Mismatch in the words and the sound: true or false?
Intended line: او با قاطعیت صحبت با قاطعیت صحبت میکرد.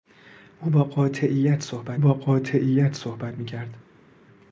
false